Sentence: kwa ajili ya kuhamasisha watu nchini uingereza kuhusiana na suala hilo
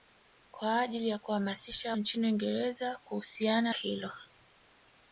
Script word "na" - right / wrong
wrong